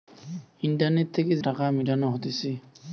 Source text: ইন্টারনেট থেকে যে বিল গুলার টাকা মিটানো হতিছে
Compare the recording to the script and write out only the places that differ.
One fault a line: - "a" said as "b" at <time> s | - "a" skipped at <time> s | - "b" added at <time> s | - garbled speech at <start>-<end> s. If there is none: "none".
- "যে বিল গুলার" skipped at 1.3 s